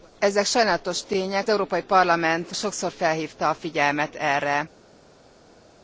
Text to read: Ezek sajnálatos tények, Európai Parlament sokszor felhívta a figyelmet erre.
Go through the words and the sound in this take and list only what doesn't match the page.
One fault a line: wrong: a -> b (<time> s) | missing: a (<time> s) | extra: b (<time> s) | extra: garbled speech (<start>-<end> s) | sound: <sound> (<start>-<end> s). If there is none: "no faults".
no faults